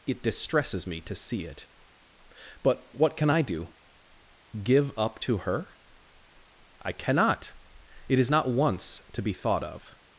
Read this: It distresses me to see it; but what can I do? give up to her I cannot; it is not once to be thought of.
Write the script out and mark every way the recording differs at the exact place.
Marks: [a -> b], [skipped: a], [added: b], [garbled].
It distresses me to see it; but what can I do? give up to her I cannot; it is not once to be thought of.